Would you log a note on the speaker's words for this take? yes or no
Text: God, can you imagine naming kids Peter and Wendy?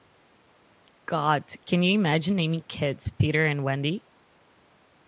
no